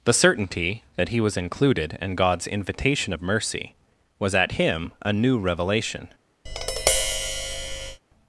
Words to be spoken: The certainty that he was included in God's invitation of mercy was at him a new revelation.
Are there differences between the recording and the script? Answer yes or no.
no